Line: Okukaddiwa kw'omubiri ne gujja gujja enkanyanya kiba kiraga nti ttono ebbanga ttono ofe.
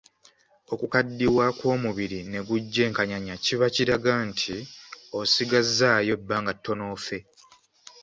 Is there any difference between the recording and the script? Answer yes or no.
yes